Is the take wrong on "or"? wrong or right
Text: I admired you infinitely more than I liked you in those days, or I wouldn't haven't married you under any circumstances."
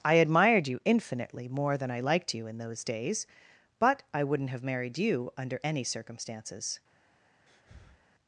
wrong